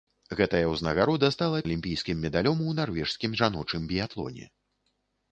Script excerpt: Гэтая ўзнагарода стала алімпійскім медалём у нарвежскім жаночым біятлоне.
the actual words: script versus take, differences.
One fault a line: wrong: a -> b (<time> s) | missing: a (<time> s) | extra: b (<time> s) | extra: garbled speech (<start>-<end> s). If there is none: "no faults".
no faults